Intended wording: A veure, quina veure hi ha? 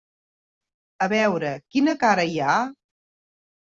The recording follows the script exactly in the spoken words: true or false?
false